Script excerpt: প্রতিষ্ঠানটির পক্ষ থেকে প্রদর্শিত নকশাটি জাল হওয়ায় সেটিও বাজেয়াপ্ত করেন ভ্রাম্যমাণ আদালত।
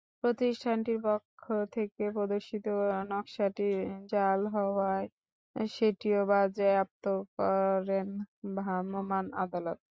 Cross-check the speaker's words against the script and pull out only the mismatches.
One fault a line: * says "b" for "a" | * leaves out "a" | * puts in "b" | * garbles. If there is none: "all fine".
all fine